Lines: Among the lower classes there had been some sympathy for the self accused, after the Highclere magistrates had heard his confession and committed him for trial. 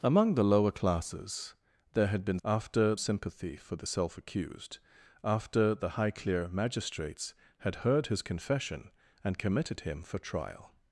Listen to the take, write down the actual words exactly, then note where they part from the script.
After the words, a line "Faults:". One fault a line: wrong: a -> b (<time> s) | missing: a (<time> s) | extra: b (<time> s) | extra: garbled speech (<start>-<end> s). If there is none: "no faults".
Among the lower classes there had been after sympathy for the self accused, after the Highclere magistrates had heard his confession and committed him for trial.
Faults:
wrong: some -> after (2.4 s)